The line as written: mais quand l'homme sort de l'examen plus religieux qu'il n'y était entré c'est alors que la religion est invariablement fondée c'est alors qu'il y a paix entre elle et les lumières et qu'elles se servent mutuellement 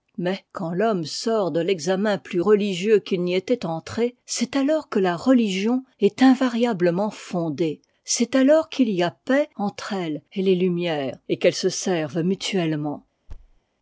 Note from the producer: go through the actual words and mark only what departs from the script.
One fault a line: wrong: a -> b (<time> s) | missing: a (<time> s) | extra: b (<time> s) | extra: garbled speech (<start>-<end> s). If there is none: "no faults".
no faults